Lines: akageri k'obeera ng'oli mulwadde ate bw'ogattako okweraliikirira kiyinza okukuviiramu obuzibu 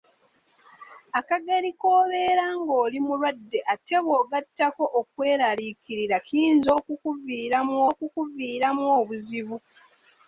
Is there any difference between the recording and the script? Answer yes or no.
yes